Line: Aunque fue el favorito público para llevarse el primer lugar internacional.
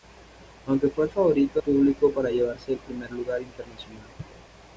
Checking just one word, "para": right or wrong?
right